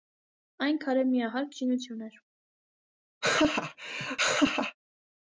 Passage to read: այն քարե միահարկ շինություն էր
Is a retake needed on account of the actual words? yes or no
no